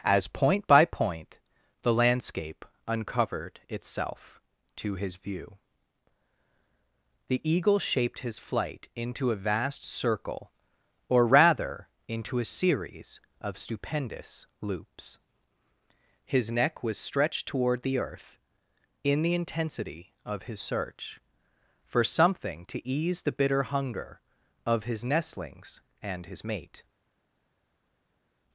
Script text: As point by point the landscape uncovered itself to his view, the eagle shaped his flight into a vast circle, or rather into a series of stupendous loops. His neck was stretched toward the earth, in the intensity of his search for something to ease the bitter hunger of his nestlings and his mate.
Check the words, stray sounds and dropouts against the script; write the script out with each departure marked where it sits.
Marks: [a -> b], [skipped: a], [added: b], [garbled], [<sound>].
As point by point the landscape uncovered itself to his view, the eagle shaped his flight into a vast circle, or rather into a series of stupendous loops. His neck was stretched toward the earth, in the intensity of his search for something to ease the bitter hunger of his nestlings and his mate.